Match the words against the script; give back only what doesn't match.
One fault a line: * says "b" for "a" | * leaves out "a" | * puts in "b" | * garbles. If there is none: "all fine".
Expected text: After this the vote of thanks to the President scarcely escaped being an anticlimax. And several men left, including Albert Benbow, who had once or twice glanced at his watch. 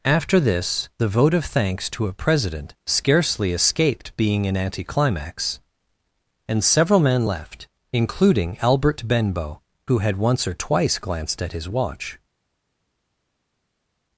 * says "a" for "the"